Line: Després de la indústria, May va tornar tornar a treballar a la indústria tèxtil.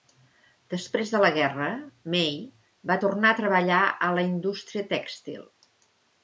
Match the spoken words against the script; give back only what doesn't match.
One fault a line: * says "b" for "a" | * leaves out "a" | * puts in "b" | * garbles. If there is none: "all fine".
* says "guerra" for "indústria"
* leaves out "tornar"